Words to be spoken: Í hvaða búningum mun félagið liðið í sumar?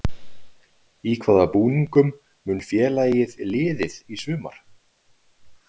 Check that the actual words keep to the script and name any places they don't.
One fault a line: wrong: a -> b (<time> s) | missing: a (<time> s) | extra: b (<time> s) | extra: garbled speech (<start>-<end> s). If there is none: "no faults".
no faults